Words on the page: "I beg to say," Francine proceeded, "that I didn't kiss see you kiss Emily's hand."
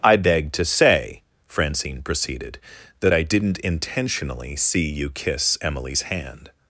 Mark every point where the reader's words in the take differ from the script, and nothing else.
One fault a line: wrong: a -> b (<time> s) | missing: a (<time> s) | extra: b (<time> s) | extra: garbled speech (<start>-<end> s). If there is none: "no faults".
wrong: kiss -> intentionally (3.6 s)